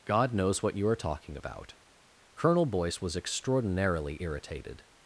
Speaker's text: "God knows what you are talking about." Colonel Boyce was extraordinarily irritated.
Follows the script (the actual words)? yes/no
yes